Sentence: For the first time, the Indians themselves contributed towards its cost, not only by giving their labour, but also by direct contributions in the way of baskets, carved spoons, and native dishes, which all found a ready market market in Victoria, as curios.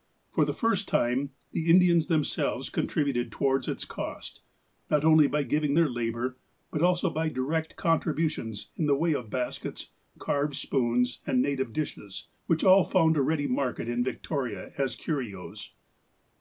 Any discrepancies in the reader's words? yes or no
yes